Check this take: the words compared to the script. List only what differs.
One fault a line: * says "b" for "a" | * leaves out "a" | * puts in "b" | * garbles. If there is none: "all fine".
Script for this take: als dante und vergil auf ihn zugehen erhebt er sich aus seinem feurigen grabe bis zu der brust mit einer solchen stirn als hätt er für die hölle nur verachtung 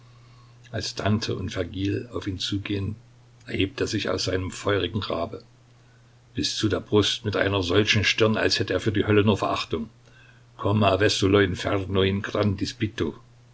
all fine